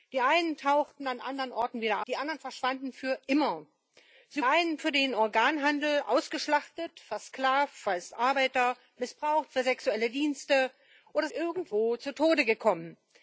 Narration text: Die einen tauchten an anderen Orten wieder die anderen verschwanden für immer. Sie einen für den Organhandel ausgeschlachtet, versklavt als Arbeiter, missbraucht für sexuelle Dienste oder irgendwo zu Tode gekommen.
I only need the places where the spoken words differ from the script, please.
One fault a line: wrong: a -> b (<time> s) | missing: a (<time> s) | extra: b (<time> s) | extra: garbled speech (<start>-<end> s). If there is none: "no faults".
no faults